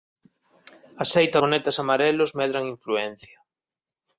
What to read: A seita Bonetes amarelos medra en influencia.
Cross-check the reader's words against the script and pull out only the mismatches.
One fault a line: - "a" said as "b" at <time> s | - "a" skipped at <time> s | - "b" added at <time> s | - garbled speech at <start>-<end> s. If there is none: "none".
none